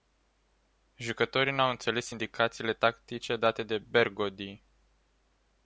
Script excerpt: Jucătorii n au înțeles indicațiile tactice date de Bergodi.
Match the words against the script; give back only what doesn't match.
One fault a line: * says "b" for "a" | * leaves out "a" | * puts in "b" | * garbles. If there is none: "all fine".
all fine